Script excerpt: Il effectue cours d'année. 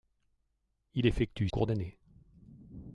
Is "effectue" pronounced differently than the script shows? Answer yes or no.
no